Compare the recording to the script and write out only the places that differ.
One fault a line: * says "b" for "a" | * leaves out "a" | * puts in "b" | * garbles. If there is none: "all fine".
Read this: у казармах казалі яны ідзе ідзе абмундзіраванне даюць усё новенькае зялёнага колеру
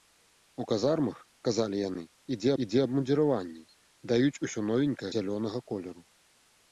all fine